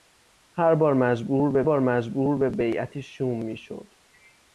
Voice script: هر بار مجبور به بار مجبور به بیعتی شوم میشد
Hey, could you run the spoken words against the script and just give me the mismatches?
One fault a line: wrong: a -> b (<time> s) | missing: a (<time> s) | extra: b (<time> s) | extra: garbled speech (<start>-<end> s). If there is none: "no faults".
no faults